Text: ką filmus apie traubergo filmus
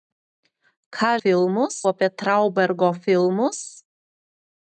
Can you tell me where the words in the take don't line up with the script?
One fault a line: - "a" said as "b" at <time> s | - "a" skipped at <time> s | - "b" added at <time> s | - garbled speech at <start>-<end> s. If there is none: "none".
none